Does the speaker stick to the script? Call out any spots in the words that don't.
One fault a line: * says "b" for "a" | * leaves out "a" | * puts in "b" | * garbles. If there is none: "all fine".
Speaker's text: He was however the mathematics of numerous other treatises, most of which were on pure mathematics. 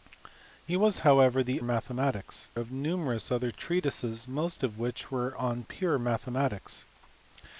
all fine